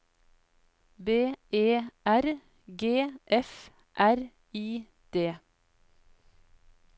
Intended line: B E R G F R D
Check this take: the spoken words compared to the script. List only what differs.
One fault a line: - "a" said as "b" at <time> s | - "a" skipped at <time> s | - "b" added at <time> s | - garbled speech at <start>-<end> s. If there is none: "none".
- "I" added at 4.5 s